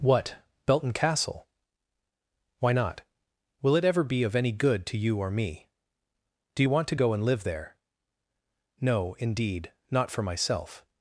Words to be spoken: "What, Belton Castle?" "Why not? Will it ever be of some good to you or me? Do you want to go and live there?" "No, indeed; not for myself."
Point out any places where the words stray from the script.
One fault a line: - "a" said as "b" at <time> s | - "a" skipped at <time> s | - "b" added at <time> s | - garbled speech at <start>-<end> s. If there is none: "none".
- "some" said as "any" at 4.3 s